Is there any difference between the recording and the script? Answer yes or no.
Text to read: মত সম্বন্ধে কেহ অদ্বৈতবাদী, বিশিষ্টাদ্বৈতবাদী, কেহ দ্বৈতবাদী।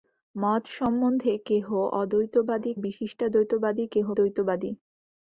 no